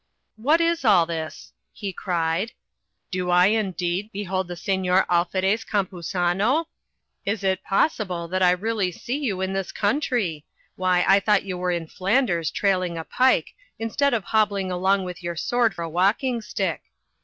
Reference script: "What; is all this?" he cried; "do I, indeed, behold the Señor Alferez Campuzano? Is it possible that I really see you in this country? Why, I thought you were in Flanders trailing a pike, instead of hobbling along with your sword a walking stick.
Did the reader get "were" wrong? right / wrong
right